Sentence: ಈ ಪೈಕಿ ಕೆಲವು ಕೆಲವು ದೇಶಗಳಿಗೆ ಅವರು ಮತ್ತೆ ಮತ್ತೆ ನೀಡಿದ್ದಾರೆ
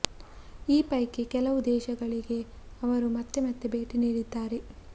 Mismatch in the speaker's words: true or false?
true